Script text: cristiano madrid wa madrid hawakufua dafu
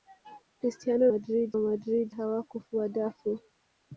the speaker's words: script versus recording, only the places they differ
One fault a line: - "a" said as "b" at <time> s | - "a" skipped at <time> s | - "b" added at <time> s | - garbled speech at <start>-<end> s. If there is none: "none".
none